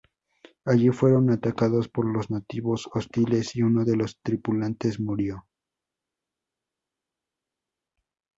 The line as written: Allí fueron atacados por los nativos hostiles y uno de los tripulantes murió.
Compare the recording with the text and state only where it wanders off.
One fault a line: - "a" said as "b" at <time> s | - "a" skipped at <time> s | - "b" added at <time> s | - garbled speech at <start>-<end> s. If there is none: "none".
none